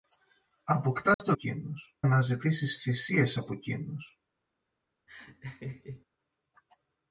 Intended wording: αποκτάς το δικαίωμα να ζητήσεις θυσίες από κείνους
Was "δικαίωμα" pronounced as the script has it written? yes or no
no